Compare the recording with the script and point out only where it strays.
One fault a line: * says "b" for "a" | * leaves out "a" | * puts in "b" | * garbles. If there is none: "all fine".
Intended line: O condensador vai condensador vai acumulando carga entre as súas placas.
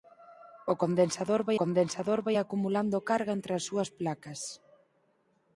all fine